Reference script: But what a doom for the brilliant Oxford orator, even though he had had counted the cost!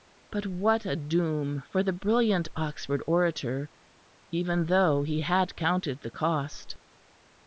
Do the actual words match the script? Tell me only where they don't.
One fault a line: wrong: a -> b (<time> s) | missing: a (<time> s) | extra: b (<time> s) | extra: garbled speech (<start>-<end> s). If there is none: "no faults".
missing: had (5.5 s)